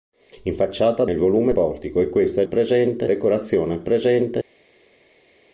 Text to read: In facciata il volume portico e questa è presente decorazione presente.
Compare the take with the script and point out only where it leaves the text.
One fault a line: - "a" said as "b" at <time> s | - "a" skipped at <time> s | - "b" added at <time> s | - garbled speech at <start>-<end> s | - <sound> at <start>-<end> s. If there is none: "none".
none